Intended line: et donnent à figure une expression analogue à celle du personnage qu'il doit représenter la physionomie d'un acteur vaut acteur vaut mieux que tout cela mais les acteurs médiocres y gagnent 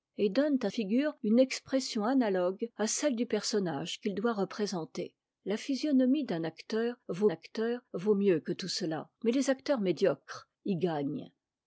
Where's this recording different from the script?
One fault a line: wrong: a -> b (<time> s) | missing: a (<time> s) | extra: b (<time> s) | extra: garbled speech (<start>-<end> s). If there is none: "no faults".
no faults